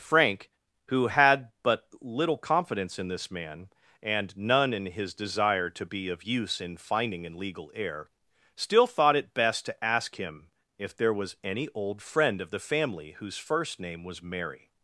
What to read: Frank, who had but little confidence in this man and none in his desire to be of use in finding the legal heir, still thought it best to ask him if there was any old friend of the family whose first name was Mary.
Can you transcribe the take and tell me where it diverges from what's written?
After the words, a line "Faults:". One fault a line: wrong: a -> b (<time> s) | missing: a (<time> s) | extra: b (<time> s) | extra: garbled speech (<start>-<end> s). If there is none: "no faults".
Frank, who had but little confidence in this man and none in his desire to be of use in finding an legal heir, still thought it best to ask him if there was any old friend of the family whose first name was Mary.
Faults:
wrong: the -> an (7.3 s)